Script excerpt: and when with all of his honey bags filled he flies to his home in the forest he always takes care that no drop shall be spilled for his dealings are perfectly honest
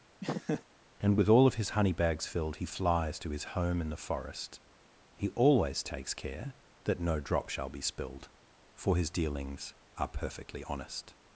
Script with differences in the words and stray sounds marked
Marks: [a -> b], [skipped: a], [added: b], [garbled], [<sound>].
[laugh] and [skipped: when] with all of his honey bags filled he flies to his home in the forest he always takes care that no drop shall be spilled for his dealings are perfectly honest